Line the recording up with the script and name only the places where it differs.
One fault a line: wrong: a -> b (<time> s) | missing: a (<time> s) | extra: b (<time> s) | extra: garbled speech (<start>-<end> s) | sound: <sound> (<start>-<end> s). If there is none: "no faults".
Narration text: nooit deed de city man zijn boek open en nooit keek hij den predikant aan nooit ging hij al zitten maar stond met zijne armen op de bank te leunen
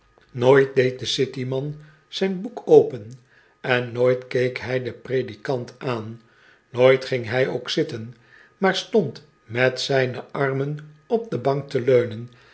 wrong: al -> ook (7.5 s)